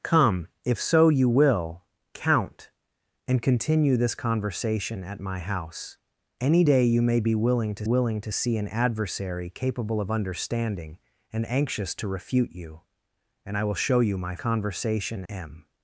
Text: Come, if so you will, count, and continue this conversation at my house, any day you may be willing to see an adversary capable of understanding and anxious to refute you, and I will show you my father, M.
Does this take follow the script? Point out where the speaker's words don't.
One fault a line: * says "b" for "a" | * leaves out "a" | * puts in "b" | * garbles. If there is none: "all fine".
* puts in "willing to"
* says "conversation" for "father"